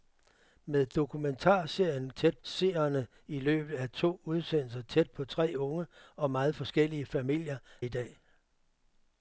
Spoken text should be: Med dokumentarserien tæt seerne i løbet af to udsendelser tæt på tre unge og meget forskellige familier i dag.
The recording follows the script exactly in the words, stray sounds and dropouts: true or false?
true